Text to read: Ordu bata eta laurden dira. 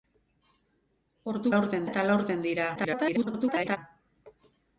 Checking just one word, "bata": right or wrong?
wrong